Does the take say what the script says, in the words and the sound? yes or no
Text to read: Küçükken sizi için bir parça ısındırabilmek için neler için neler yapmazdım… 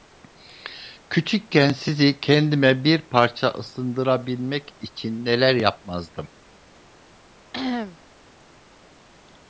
no